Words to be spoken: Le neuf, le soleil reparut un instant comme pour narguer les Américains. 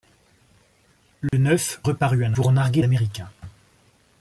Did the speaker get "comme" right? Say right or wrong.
wrong